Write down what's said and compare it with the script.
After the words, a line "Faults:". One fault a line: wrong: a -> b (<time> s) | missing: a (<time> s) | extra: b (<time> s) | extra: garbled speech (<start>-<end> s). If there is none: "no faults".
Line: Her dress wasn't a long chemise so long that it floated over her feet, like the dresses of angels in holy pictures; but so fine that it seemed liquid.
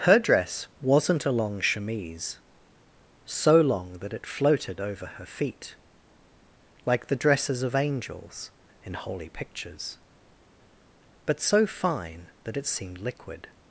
Her dress wasn't a long chemise so long that it floated over her feet, like the dresses of angels in holy pictures; but so fine that it seemed liquid.
Faults:
no faults